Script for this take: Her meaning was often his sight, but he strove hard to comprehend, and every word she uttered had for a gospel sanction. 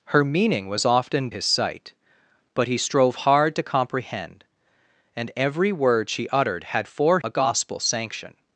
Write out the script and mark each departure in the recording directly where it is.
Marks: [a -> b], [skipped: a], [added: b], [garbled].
Her meaning was often his sight, but he strove hard to comprehend, and every word she uttered had for a gospel sanction.